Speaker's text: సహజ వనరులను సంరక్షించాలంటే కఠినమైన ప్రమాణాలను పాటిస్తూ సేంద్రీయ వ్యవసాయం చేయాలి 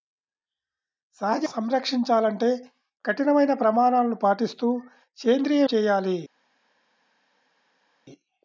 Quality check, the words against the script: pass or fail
fail